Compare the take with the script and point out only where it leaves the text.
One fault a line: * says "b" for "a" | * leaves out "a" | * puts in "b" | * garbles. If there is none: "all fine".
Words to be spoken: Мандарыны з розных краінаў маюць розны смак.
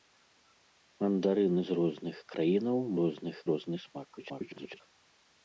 * says "розных" for "маюць"
* garbles